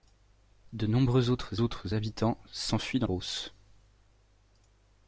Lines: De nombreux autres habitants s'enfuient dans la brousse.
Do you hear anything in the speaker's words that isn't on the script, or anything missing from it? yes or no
yes